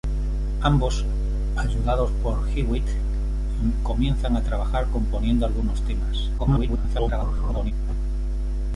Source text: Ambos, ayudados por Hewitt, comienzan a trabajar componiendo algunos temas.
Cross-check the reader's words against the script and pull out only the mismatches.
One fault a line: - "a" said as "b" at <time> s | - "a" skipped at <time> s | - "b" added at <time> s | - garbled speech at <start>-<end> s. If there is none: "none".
- garbled speech at 6.4-7.7 s